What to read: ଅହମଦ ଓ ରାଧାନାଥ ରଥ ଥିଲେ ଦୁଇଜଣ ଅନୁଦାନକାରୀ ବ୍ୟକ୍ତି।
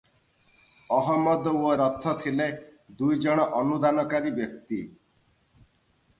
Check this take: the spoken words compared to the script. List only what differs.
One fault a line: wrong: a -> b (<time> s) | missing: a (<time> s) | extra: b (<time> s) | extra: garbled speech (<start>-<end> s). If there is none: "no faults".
missing: ରାଧାନାଥ (1.7 s)